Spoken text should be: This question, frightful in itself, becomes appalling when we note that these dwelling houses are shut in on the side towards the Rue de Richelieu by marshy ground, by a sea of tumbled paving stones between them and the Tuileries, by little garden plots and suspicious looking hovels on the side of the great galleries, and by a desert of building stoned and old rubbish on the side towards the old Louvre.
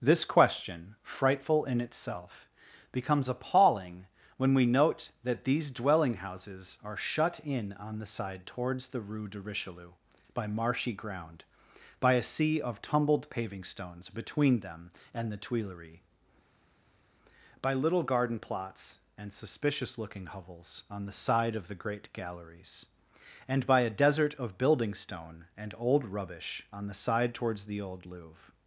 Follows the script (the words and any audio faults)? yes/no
no